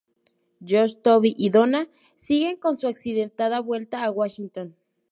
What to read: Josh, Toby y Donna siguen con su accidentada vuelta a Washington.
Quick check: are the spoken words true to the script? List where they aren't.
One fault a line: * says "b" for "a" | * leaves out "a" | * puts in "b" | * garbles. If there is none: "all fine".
all fine